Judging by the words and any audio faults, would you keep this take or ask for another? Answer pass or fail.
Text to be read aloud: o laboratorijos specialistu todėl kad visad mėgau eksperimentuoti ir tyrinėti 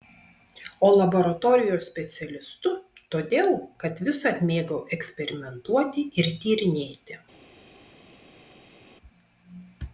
pass